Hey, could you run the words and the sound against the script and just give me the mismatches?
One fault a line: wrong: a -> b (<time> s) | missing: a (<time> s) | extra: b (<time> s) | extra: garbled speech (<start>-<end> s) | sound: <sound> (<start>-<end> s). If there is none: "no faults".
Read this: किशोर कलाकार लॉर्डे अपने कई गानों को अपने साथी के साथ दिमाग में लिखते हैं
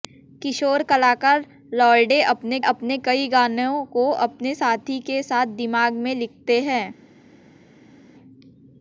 extra: अपने (2.6 s)